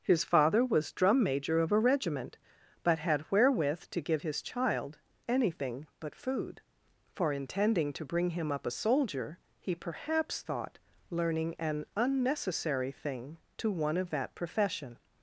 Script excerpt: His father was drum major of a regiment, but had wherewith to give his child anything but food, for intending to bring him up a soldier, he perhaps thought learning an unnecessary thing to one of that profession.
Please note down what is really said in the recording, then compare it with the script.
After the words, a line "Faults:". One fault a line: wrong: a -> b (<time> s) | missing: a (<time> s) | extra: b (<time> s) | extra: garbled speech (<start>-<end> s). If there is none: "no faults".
His father was drum major of a regiment, but had wherewith to give his child anything but food, for intending to bring him up a soldier, he perhaps thought learning an unnecessary thing to one of that profession.
Faults:
no faults